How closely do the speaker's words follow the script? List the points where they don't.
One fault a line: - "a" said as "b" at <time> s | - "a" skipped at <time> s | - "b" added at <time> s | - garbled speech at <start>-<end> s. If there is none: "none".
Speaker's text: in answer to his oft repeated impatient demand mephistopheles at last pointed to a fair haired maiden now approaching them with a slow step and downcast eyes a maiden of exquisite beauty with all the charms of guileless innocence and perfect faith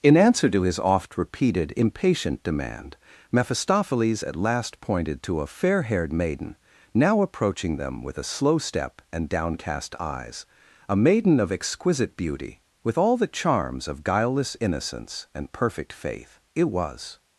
- "it was" added at 16.6 s